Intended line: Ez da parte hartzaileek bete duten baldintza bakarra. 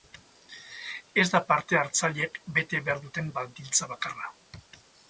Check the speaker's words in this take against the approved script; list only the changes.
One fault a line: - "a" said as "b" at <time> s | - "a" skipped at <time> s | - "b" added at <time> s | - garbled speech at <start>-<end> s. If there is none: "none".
- "behar" added at 2.9 s